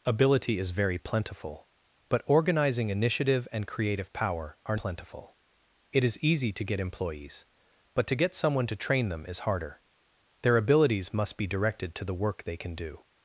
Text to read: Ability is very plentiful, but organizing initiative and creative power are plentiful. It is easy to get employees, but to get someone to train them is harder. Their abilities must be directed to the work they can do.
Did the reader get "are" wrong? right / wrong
right